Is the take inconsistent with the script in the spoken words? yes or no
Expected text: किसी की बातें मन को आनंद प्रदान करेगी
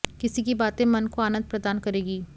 no